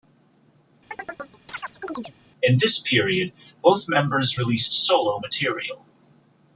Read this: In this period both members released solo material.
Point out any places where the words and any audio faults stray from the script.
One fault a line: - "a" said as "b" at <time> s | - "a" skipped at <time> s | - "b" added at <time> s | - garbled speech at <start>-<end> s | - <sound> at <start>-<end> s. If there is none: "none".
- chirp at 0.9-2.1 s